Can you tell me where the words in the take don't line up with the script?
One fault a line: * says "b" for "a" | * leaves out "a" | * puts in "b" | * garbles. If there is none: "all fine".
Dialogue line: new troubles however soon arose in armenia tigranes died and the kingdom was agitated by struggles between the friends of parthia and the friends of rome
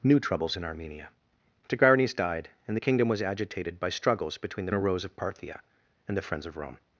* leaves out "however soon arose"
* says "arose" for "friends"